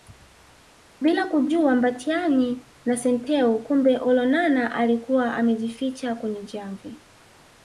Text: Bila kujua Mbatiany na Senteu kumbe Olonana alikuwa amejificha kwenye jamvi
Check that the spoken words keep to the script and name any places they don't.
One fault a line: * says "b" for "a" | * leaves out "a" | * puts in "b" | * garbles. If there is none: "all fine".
all fine